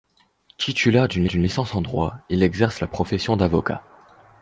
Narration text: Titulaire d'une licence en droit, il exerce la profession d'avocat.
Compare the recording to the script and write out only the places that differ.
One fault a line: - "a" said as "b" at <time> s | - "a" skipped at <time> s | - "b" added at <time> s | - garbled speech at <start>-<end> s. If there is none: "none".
- "d'une" added at 1.3 s